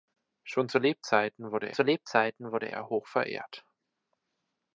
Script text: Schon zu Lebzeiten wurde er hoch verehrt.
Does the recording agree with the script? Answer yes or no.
no